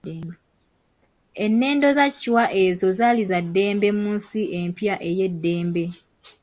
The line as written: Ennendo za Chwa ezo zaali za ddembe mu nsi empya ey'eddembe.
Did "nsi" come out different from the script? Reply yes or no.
no